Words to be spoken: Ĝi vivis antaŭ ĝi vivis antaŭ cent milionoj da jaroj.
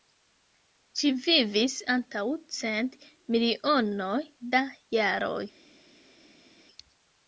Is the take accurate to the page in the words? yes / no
no